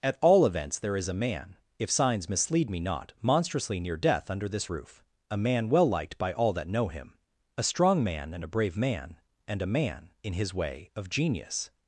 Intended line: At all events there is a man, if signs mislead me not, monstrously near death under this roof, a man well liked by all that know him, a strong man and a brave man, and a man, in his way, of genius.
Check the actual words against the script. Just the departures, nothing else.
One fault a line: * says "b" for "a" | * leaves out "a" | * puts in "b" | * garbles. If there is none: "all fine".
all fine